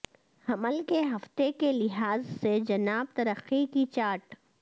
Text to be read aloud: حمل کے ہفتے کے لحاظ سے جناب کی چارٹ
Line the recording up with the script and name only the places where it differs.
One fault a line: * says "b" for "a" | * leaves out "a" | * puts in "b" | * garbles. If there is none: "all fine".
* puts in "ترقی"